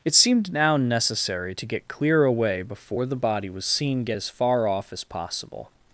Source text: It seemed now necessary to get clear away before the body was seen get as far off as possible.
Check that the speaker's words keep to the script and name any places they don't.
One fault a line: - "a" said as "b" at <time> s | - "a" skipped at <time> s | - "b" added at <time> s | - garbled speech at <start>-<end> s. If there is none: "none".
none